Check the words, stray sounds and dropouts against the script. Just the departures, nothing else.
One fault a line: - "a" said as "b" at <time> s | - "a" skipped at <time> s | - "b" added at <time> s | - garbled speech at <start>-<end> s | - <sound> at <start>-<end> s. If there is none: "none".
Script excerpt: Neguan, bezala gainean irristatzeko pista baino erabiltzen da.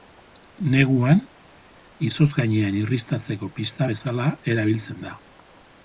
- "bezala" said as "izotz" at 2.1 s
- "baino" said as "bezala" at 3.9 s